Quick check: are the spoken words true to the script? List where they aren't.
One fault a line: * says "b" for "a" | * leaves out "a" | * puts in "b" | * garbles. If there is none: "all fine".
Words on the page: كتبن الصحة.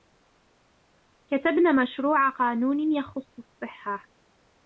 * puts in "مشروع قانون يخص"